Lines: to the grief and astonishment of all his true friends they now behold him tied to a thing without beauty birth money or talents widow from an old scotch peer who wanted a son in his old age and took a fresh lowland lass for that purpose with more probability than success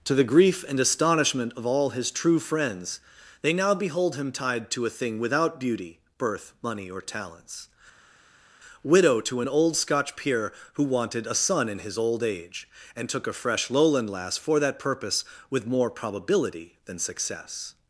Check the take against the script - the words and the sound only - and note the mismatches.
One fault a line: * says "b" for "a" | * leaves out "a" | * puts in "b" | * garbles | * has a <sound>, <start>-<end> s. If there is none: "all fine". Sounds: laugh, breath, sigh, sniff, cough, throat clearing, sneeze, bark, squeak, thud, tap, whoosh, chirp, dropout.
* says "to" for "from"